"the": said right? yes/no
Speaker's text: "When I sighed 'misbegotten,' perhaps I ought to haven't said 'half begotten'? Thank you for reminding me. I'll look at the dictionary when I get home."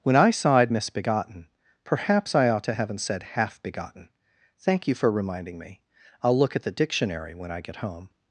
yes